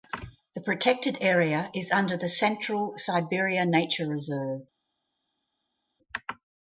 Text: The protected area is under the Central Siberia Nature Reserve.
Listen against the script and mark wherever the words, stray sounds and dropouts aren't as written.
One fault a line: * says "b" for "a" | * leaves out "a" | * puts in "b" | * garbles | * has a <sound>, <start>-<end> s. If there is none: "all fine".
all fine